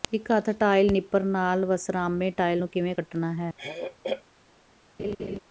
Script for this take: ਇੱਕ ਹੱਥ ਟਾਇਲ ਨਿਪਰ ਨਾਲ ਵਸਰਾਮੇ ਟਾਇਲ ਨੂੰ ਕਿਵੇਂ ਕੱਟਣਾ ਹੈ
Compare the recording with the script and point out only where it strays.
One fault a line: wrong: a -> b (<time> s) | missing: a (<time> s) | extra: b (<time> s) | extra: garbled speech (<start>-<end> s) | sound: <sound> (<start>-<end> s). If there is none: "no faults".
sound: throat clearing (3.6-4.2 s)
sound: laugh (5.0-5.4 s)